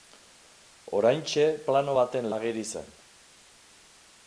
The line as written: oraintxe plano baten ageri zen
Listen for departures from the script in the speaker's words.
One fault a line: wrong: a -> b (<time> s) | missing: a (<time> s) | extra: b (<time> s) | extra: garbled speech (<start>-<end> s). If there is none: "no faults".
no faults